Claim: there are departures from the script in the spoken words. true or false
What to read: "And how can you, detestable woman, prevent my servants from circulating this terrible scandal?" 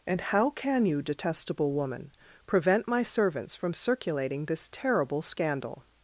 false